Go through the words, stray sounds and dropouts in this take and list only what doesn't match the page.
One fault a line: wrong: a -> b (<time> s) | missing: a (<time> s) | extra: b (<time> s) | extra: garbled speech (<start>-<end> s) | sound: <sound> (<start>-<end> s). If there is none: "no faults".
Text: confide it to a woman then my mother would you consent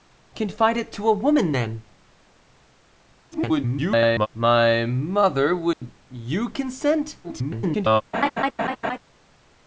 extra: garbled speech (3.3-4.3 s)
sound: dropout (5.7-5.8 s)
extra: garbled speech (7.2-8.0 s)
sound: laugh (8.1-9.0 s)